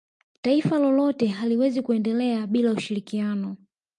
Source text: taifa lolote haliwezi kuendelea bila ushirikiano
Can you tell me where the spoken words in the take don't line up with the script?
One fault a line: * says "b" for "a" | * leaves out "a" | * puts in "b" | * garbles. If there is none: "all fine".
all fine